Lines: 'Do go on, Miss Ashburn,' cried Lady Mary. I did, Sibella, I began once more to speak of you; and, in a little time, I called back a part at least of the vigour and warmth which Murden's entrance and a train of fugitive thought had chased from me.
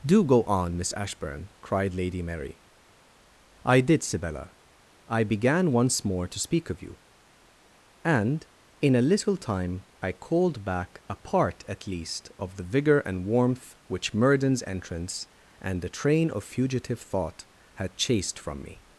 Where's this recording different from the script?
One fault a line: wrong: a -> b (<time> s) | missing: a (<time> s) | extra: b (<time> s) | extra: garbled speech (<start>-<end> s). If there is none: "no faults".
wrong: a -> the (15.8 s)